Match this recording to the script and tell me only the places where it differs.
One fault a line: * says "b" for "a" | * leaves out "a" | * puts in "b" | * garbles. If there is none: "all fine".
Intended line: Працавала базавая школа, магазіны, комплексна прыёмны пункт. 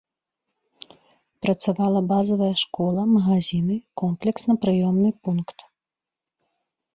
all fine